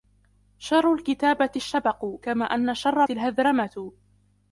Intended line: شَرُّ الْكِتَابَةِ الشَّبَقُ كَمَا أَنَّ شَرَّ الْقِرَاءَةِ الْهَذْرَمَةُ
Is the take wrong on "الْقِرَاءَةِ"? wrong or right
wrong